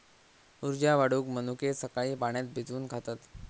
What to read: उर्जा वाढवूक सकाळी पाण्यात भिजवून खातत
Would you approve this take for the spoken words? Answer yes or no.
no